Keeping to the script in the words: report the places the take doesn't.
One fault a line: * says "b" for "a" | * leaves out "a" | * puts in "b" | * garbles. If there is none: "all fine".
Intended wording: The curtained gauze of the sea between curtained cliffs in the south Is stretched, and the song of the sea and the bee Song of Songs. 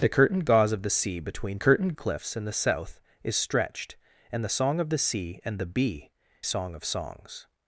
all fine